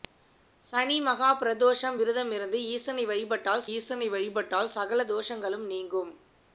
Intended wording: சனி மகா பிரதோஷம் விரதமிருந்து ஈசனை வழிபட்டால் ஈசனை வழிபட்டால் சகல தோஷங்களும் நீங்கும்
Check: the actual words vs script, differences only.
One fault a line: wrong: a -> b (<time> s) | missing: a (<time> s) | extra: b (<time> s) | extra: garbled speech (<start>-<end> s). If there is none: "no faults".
no faults